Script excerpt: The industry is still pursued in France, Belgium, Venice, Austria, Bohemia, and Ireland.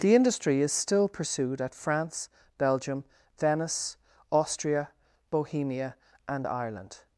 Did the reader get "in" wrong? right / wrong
wrong